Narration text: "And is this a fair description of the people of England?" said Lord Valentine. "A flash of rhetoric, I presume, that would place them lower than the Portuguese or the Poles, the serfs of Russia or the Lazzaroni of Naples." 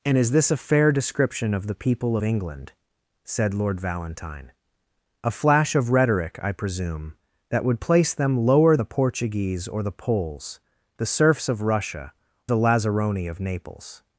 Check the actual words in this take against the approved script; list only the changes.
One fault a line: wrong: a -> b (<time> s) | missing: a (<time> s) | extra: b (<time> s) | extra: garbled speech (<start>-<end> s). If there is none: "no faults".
missing: of (2.2 s)
missing: than (8.8 s)
missing: or (12.1 s)